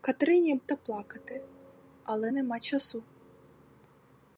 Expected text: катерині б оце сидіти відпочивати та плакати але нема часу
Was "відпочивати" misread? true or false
true